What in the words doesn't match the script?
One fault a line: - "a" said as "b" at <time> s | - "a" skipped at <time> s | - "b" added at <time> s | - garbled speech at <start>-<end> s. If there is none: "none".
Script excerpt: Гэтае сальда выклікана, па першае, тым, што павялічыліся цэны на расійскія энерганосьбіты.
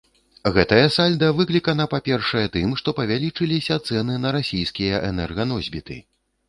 none